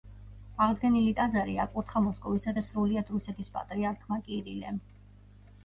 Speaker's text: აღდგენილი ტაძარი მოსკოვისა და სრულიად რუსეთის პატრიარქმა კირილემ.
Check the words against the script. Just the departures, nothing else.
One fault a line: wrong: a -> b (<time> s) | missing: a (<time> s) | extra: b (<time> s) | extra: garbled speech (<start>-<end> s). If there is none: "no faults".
extra: აკურთხა (1.6 s)